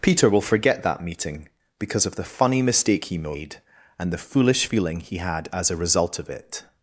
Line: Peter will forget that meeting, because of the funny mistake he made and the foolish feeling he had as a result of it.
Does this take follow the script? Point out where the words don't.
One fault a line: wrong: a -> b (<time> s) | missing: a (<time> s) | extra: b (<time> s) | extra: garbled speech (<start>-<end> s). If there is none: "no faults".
no faults